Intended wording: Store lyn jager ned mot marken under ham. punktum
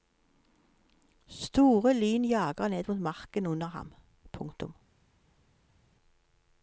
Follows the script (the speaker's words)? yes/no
yes